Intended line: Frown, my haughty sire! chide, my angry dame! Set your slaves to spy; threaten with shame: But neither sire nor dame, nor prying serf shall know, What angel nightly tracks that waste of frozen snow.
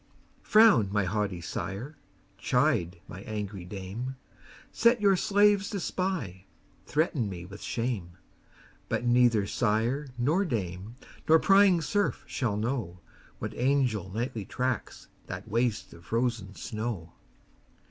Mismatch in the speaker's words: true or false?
true